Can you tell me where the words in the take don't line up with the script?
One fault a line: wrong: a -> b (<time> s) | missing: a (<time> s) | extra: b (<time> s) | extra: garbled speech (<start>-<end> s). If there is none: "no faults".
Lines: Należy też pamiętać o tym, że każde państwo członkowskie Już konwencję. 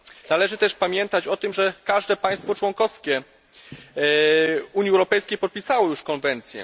extra: Unii Europejskiej podpisało (4.7 s)